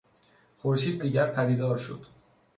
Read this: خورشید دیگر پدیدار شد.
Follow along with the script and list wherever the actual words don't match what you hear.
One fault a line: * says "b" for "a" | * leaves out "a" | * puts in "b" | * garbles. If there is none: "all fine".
all fine